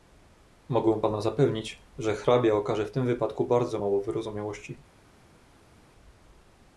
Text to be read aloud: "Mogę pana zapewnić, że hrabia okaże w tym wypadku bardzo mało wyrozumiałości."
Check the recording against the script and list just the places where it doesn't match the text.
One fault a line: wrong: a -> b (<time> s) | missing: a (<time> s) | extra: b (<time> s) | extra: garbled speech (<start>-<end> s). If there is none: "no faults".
no faults